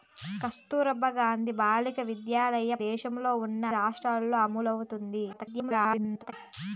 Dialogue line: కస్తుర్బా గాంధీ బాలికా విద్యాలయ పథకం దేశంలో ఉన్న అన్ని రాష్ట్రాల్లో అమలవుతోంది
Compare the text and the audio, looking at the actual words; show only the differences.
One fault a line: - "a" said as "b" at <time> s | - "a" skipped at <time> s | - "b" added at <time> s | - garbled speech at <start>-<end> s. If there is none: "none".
- "పథకం" skipped at 2.8 s
- "అన్ని" skipped at 3.6 s
- garbled speech at 5.3-6.3 s